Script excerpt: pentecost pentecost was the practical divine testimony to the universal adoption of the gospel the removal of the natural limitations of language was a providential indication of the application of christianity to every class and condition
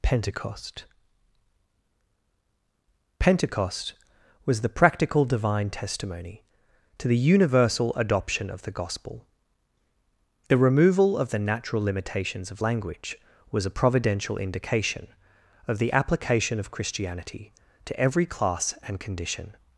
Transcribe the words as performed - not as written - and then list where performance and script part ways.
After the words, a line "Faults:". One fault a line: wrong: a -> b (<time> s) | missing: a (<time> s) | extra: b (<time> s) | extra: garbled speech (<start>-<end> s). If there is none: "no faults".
pentecost pentecost was the practical divine testimony to the universal adoption of the gospel the removal of the natural limitations of language was a providential indication of the application of christianity to every class and condition
Faults:
no faults